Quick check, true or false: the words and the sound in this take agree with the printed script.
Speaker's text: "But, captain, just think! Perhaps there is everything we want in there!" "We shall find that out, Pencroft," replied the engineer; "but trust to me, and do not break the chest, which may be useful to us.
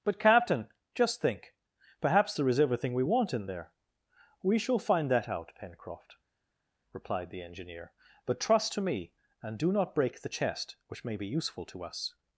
true